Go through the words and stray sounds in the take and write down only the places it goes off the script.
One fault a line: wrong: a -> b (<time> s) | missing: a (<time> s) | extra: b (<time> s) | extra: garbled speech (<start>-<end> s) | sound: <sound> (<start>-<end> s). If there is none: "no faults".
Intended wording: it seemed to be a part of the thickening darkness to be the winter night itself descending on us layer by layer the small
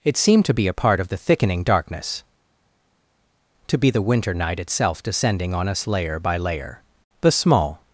no faults